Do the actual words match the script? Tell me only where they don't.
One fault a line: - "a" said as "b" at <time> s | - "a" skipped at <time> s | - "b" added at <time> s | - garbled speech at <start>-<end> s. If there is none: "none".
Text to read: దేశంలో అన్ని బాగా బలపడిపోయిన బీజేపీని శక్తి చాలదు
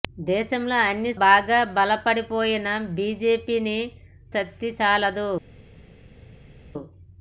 none